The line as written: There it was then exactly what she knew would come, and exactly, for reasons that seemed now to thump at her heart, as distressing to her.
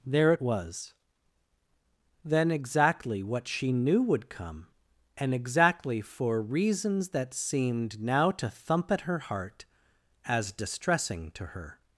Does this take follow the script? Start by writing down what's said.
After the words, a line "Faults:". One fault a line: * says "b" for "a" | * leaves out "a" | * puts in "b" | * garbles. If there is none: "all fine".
There it was then exactly what she knew would come, and exactly, for reasons that seemed now to thump at her heart, as distressing to her.
Faults:
all fine